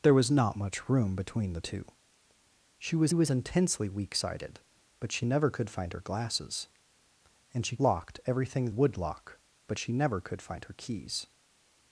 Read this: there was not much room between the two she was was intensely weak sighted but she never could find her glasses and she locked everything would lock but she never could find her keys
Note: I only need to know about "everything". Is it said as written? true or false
true